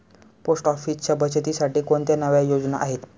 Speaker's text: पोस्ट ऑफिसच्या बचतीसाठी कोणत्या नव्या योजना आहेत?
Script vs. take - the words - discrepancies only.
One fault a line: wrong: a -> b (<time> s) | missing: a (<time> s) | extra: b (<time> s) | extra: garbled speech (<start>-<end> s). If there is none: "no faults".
no faults